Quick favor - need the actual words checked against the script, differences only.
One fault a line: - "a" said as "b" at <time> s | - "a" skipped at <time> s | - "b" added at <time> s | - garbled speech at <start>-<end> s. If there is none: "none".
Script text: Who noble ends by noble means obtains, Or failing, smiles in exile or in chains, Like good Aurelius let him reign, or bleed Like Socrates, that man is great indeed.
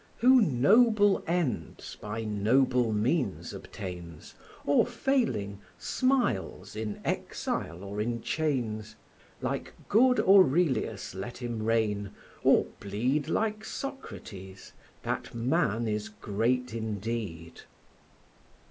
none